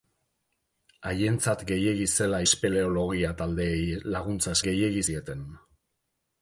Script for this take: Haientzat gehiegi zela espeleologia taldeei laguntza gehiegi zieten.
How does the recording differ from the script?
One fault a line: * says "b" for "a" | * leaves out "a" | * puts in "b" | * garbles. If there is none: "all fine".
all fine